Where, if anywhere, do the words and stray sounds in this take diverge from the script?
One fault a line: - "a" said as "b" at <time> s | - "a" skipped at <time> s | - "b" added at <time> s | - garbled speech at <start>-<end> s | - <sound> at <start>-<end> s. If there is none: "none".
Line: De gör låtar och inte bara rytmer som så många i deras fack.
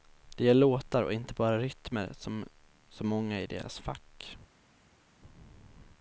none